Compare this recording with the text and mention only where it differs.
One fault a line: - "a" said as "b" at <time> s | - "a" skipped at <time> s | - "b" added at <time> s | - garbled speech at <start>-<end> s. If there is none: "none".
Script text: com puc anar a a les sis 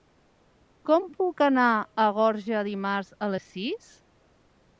- "gorga dimarts" added at 2.2 s